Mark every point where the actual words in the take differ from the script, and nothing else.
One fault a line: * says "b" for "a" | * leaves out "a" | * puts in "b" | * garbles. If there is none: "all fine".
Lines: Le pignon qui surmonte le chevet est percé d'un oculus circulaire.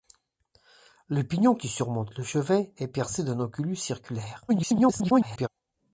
* garbles